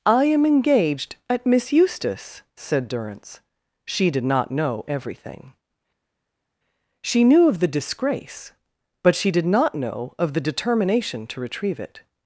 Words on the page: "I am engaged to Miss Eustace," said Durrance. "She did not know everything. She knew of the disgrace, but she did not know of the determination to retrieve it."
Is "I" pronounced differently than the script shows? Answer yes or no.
no